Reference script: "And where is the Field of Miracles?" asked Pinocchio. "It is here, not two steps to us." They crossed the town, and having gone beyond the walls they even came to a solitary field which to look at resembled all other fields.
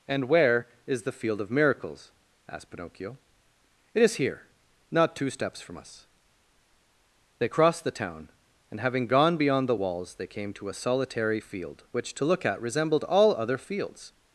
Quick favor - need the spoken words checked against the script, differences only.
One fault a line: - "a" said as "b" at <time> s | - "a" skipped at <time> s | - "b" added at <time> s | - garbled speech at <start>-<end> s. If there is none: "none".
- "to" said as "from" at 5.6 s
- "even" skipped at 10.3 s